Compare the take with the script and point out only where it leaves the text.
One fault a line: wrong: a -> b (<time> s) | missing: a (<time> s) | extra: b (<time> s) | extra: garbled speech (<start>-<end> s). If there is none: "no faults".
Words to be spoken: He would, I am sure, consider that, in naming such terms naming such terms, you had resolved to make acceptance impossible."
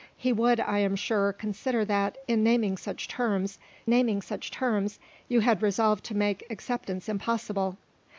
no faults